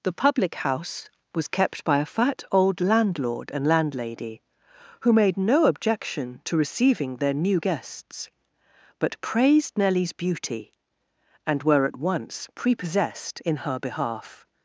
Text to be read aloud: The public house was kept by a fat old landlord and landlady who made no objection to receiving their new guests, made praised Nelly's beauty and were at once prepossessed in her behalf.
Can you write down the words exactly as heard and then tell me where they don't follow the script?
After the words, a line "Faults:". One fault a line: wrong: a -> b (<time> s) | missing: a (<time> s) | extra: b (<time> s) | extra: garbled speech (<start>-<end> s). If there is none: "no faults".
The public house was kept by a fat old landlord and landlady who made no objection to receiving their new guests, but praised Nelly's beauty and were at once prepossessed in her behalf.
Faults:
wrong: made -> but (9.0 s)